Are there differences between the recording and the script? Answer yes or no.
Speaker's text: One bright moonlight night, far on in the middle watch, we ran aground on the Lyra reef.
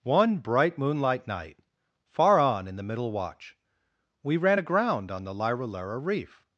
yes